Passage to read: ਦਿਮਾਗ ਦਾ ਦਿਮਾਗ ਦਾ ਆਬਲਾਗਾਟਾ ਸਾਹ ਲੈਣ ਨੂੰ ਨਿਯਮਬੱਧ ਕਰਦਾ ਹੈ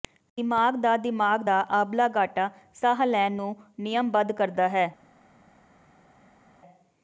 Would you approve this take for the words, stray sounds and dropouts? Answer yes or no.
yes